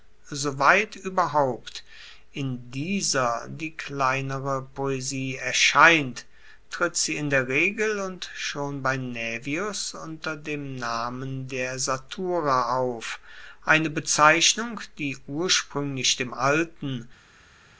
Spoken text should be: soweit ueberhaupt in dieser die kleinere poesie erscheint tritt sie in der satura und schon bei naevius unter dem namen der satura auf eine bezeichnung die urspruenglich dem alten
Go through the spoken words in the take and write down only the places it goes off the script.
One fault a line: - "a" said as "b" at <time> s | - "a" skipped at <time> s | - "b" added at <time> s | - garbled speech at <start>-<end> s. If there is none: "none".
- "satura" said as "regel" at 7.5 s